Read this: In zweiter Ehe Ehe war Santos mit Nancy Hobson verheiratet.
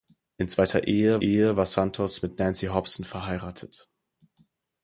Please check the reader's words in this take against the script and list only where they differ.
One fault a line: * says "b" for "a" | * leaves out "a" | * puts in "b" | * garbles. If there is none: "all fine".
all fine